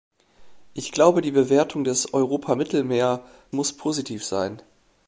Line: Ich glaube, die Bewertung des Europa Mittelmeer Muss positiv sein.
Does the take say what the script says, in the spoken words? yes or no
yes